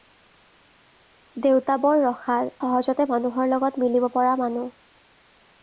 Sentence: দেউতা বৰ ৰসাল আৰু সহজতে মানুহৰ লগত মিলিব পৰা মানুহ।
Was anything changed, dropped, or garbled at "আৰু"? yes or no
yes